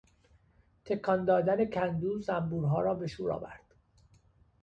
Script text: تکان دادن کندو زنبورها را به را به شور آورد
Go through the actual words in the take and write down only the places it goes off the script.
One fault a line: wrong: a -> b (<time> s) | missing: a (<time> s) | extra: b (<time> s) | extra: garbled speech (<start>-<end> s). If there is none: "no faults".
missing: را به (3.1 s)